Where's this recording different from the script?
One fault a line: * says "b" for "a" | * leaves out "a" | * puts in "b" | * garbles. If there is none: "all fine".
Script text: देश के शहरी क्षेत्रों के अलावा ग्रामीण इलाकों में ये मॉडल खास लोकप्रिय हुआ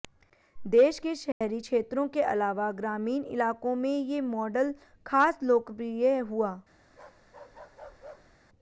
all fine